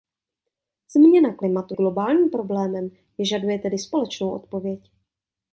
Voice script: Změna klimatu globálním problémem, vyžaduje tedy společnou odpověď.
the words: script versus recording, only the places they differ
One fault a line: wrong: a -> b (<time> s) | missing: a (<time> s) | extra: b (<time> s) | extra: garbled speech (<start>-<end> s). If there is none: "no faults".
no faults